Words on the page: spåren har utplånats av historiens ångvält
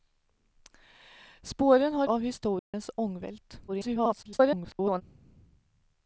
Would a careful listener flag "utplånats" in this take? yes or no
yes